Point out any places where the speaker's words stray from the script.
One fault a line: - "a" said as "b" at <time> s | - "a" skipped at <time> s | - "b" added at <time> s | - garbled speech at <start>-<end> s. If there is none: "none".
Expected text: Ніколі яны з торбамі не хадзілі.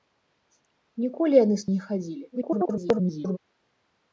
- "торбамі" skipped at 1.7 s
- garbled speech at 2.3-3.4 s